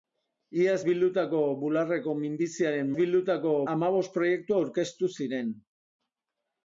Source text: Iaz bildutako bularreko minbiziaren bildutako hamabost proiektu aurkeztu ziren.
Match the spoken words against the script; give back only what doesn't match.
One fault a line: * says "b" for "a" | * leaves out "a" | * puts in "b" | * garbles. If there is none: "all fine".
all fine